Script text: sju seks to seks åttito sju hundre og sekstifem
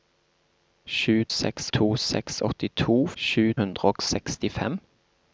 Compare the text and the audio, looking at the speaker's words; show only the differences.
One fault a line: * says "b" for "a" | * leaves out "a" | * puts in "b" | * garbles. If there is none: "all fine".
all fine